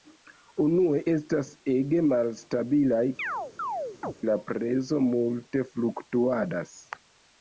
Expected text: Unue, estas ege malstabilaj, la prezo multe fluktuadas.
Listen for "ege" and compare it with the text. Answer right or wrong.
right